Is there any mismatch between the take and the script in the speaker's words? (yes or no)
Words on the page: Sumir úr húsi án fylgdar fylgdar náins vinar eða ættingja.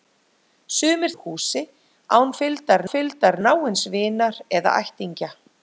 no